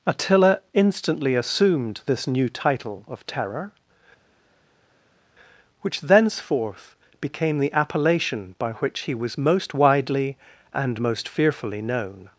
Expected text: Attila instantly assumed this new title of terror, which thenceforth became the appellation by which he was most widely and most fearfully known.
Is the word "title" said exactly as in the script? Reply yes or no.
yes